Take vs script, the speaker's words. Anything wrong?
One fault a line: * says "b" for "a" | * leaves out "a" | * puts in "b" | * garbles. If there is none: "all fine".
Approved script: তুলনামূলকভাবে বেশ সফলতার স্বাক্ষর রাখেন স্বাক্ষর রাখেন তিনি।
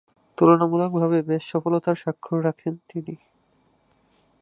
* leaves out "স্বাক্ষর রাখেন"